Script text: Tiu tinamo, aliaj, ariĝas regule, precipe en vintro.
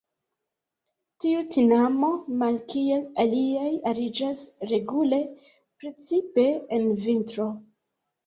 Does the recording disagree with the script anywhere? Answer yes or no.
yes